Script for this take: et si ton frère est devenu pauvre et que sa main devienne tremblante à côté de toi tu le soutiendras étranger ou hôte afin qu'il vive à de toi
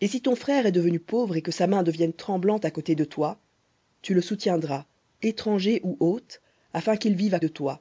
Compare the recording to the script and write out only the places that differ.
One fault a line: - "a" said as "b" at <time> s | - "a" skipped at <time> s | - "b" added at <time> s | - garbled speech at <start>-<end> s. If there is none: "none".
none